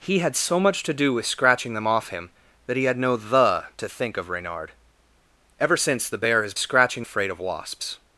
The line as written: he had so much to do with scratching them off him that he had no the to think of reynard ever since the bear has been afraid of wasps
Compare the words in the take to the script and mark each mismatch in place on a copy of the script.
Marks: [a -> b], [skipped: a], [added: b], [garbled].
he had so much to do with scratching them off him that he had no the to think of reynard ever since the bear has [been -> scratching] afraid of wasps